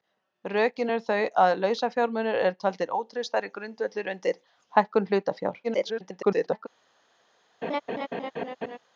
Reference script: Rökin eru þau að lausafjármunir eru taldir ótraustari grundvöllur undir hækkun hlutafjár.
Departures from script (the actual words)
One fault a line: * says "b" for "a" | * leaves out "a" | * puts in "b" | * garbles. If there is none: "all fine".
* garbles